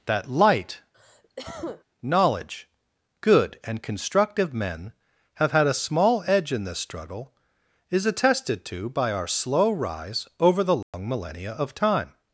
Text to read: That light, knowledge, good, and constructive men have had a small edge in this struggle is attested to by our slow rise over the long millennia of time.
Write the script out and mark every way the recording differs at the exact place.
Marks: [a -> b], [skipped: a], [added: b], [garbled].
That light, knowledge, good, and constructive men have had a small edge in this struggle is attested to by our slow rise over the long millennia of time.